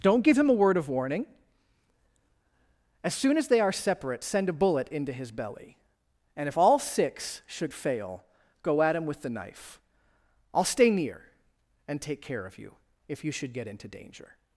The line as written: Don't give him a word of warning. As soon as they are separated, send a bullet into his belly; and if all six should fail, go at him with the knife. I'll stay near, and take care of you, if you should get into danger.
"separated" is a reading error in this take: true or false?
true